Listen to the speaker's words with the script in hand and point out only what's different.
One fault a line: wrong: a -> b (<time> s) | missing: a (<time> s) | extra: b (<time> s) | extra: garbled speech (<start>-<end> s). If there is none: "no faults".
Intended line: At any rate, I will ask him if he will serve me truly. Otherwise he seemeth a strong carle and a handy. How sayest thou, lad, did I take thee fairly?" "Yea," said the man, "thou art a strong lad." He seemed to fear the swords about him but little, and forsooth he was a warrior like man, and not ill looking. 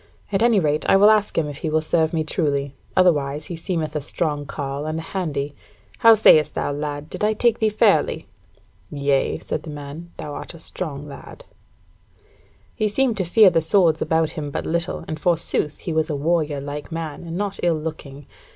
no faults